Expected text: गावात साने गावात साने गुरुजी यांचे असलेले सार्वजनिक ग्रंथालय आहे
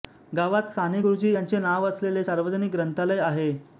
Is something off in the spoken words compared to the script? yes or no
yes